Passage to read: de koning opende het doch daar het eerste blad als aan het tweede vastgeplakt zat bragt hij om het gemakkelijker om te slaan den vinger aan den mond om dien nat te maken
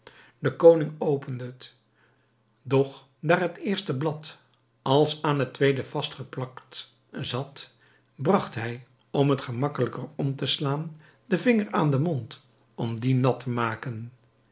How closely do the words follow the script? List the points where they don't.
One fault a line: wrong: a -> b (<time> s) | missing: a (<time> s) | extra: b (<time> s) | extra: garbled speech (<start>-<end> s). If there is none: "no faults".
no faults